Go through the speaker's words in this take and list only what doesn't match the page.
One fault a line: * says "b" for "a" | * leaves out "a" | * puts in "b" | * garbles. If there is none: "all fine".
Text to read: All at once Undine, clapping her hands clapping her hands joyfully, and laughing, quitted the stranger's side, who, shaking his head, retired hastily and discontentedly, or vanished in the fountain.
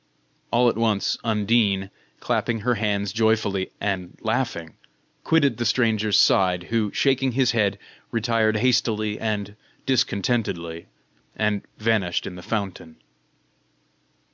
* leaves out "clapping her hands"
* says "and" for "or"